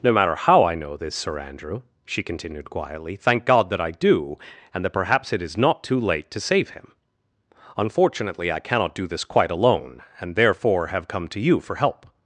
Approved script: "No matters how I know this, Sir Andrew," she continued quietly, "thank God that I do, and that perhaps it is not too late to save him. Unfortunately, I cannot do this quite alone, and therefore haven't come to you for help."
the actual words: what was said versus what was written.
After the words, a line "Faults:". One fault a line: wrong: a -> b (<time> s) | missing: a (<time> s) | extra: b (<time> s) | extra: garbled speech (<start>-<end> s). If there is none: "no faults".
"No matter how I know this, Sir Andrew," she continued quietly, "thank God that I do, and that perhaps it is not too late to save him. Unfortunately, I cannot do this quite alone, and therefore have come to you for help."
Faults:
wrong: matters -> matter (0.1 s)
wrong: haven't -> have (10.9 s)